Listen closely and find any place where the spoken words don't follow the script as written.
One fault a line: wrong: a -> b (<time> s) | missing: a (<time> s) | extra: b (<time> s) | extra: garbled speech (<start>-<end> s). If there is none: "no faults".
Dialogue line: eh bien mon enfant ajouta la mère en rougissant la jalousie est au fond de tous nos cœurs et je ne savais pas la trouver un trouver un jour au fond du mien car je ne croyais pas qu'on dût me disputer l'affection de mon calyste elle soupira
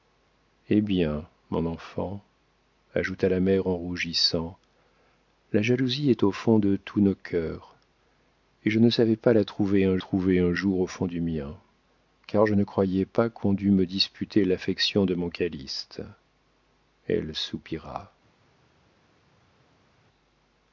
no faults